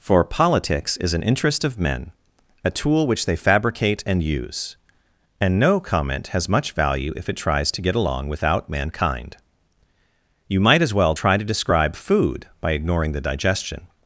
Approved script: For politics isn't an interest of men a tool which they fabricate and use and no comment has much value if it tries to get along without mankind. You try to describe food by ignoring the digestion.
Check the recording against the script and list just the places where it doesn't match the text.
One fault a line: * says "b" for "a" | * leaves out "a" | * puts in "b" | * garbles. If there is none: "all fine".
* says "is" for "isn't"
* puts in "might as well"